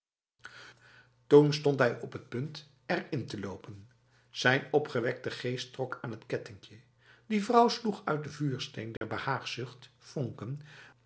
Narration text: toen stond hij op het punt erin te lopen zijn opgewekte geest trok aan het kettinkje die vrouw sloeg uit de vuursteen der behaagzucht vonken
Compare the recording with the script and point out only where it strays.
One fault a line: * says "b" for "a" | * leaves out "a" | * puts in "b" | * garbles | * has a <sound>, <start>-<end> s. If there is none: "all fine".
* has a dropout, 9.0-9.0 s